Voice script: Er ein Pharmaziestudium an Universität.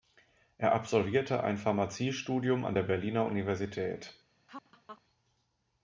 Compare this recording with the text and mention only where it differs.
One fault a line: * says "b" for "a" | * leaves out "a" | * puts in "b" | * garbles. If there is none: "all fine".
* puts in "absolvierte"
* puts in "der Berliner"